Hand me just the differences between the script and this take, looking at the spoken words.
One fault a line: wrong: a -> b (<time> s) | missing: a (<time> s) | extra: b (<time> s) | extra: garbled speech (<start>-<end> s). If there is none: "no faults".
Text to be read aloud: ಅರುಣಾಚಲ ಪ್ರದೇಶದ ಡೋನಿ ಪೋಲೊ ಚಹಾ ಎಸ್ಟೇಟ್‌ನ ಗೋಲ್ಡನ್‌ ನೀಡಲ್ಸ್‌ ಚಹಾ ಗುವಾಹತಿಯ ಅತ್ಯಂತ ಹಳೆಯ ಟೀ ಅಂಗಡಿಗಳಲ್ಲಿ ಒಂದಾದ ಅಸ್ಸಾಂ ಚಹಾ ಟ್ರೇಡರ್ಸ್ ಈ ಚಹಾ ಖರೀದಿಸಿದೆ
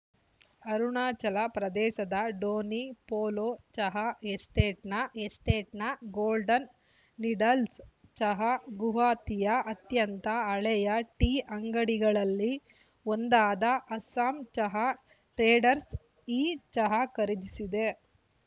extra: ಎಸ್ಟೇಟ್‌ನ (5.2 s)